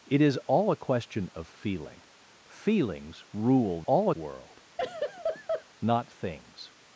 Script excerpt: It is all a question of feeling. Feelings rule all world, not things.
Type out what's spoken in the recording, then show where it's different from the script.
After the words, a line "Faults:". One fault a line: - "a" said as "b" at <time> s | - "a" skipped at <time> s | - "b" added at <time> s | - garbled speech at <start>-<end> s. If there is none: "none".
It is all a question of feeling. Feelings rule all world, not things.
Faults:
none